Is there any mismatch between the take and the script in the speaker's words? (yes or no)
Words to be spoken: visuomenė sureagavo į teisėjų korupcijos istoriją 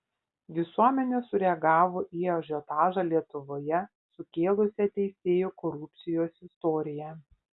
yes